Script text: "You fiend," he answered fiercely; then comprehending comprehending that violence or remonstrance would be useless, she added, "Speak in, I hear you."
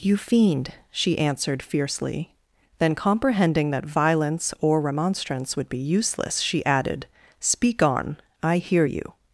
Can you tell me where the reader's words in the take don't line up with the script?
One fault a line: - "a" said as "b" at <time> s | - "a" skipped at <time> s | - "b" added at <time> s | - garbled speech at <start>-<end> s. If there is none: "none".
- "he" said as "she" at 0.9 s
- "comprehending" skipped at 3.7 s
- "in" said as "on" at 7.8 s